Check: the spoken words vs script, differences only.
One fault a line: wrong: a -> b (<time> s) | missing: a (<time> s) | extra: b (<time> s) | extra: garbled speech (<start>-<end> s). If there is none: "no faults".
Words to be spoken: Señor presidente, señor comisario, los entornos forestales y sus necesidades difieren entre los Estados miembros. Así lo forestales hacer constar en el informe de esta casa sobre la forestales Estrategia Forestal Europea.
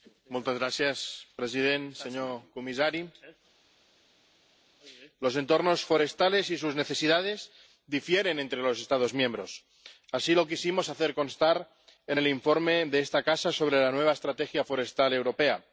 wrong: forestales -> quisimos (10.5 s)
wrong: forestales -> nueva (13.9 s)